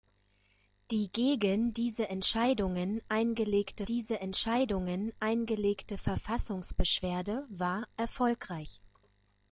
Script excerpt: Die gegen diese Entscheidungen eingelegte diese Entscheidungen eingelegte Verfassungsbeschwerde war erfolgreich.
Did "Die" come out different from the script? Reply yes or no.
no